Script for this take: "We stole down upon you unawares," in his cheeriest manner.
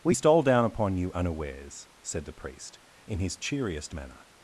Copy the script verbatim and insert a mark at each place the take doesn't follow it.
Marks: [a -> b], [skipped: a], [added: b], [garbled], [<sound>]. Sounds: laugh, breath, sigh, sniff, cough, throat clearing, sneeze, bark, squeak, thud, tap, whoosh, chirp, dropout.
"We stole down upon you unawares," [added: said the priest] in his cheeriest manner.